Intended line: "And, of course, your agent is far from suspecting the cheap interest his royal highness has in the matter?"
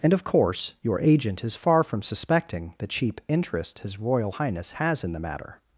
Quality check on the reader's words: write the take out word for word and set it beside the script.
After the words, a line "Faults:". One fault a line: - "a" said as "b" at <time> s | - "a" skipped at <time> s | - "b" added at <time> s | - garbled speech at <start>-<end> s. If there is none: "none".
"And, of course, your agent is far from suspecting the cheap interest his royal highness has in the matter?"
Faults:
none